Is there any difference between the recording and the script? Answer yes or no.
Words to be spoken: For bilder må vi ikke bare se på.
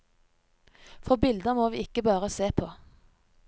no